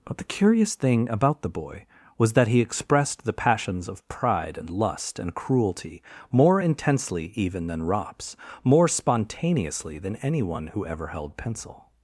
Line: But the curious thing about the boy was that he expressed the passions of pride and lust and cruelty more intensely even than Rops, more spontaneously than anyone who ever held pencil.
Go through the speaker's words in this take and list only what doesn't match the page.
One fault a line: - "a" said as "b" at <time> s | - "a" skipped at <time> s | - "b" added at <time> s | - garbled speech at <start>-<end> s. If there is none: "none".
none